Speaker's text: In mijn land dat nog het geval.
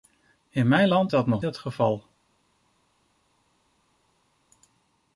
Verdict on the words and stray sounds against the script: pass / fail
pass